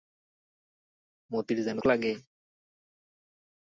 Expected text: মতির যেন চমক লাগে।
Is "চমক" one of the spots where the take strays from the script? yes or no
yes